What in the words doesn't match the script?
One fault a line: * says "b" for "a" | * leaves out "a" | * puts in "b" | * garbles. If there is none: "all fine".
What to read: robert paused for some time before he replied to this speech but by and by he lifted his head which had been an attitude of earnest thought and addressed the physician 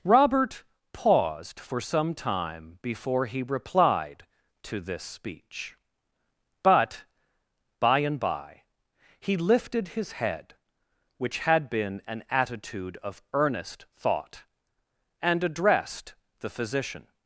all fine